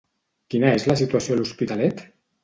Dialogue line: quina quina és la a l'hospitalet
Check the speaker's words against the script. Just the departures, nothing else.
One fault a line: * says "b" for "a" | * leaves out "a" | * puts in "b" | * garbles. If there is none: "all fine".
* leaves out "quina"
* puts in "situació"